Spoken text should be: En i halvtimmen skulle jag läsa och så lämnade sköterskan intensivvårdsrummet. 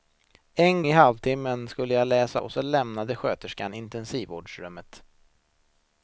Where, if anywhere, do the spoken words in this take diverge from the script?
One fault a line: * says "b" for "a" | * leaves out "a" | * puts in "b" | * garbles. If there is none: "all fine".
all fine